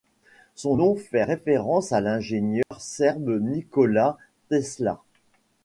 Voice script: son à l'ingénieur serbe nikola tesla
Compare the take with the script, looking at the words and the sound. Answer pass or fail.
fail